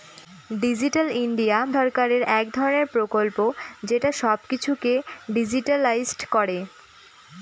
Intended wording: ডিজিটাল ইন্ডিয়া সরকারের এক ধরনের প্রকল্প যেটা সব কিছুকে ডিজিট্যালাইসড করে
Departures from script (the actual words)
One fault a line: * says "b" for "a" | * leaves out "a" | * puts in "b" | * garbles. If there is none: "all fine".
all fine